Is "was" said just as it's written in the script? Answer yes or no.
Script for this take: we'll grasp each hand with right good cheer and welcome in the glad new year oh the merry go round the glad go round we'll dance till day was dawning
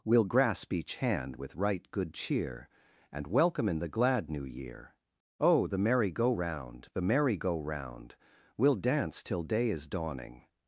no